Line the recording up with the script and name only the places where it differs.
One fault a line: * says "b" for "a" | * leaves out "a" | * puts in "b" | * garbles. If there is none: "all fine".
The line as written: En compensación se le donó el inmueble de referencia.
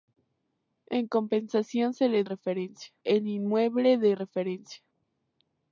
* says "referencia" for "donó"